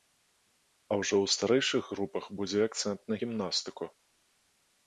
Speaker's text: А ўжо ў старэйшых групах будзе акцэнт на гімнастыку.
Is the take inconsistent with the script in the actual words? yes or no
no